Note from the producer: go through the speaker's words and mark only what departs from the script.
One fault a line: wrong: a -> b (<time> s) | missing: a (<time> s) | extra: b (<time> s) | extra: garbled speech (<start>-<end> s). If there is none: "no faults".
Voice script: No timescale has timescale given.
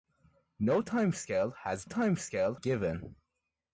no faults